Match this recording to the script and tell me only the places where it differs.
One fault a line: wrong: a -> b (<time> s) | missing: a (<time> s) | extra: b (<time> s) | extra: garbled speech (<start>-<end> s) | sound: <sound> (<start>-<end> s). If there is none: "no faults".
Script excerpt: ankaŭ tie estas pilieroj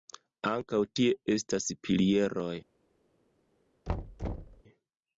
sound: thud (3.9-4.6 s)